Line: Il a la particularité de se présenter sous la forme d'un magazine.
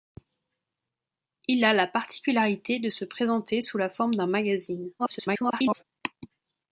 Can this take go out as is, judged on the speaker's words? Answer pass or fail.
fail